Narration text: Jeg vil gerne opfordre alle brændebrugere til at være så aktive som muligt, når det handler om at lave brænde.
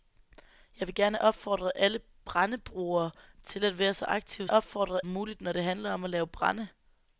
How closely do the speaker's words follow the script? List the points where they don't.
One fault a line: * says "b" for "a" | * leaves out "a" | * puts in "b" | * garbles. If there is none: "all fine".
* says "opfordre" for "som"